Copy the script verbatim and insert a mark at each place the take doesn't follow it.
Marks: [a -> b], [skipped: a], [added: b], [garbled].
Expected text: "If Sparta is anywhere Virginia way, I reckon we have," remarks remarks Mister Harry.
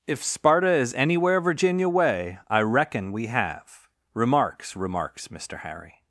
"If Sparta is anywhere Virginia way, I reckon we have," remarks remarks Mister Harry.